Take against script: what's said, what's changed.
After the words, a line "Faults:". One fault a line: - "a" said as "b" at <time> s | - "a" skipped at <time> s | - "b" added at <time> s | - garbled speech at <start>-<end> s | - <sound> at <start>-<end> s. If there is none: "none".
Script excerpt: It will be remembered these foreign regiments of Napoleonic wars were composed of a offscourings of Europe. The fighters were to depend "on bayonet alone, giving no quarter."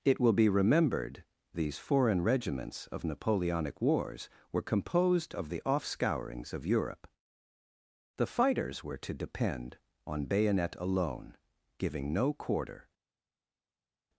It will be remembered these foreign regiments of Napoleonic wars were composed of the offscourings of Europe. The fighters were to depend "on bayonet alone, giving no quarter."
Faults:
- "a" said as "the" at 5.5 s